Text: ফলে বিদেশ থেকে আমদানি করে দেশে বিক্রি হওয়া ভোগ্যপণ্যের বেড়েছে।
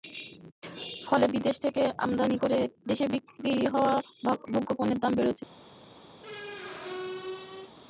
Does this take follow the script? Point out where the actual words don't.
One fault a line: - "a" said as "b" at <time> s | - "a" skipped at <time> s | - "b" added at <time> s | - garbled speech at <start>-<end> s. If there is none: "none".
- "দাম" added at 5.0 s